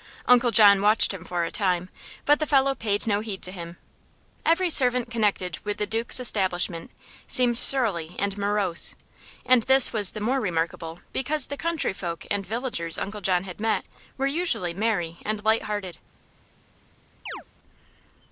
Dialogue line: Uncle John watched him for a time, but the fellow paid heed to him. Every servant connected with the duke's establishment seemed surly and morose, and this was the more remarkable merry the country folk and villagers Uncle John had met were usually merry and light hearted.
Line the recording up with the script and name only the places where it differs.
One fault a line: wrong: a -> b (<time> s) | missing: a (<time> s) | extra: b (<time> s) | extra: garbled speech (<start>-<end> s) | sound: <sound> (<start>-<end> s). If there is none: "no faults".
extra: no (3.0 s)
wrong: merry -> because (11.1 s)
sound: chirp (17.3-17.4 s)